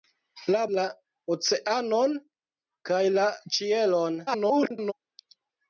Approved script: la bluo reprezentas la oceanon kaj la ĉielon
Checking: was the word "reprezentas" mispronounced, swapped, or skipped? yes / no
yes